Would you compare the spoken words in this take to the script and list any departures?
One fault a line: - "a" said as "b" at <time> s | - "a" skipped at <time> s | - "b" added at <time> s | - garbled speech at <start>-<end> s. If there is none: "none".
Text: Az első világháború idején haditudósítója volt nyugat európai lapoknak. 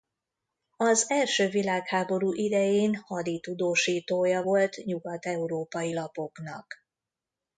none